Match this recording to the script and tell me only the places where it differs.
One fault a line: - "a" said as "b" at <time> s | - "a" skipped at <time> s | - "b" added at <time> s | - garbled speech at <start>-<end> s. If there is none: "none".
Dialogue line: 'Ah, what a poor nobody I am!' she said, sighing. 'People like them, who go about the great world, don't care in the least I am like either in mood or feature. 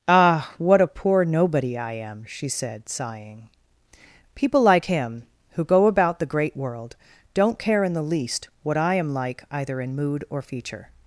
- "them" said as "him" at 4.8 s
- "what" added at 8.6 s